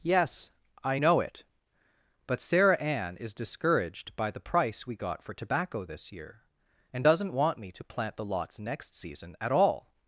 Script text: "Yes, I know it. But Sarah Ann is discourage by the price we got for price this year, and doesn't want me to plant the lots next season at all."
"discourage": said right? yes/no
no